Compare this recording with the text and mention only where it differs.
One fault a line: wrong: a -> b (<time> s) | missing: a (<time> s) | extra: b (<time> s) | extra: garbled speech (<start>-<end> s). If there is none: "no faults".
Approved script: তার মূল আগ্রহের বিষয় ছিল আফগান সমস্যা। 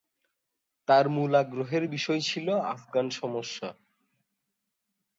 no faults